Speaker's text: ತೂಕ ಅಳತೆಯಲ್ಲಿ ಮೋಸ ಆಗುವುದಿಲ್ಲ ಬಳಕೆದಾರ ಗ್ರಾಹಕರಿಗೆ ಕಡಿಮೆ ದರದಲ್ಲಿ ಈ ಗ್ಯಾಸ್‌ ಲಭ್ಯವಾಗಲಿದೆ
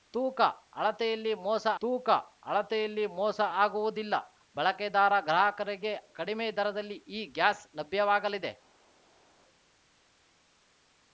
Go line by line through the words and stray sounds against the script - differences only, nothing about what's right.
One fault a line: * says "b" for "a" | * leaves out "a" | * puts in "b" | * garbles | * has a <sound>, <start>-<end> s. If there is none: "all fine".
* puts in "ತೂಕ ಅಳತೆಯಲ್ಲಿ ಮೋಸ"